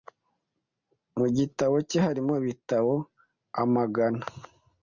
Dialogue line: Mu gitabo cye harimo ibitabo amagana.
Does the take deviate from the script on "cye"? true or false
false